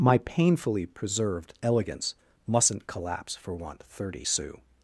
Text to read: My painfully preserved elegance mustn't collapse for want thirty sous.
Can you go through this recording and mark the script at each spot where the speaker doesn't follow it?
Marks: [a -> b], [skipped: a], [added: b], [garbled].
My painfully preserved elegance mustn't collapse for want thirty sous.